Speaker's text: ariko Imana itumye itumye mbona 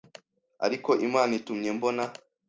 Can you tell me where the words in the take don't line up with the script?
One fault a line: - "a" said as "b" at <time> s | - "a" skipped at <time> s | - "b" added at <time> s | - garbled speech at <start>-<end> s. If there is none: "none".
- "itumye" skipped at 1.7 s